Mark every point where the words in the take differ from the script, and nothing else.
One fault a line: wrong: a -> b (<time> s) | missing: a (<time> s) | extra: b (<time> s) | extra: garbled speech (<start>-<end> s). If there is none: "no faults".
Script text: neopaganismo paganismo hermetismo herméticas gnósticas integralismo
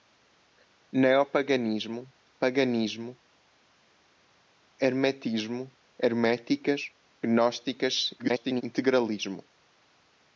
extra: garbled speech (8.2-8.6 s)